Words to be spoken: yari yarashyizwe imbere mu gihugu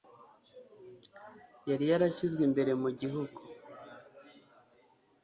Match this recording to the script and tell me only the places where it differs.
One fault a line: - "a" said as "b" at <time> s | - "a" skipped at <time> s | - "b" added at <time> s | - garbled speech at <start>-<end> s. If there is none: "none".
none